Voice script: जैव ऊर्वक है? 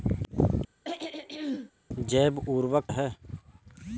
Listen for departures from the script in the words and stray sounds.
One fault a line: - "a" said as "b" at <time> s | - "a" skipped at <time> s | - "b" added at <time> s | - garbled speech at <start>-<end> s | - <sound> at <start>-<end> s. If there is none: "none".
- throat clearing at 0.8-1.7 s